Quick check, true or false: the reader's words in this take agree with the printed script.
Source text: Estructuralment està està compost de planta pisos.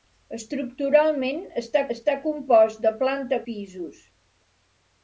true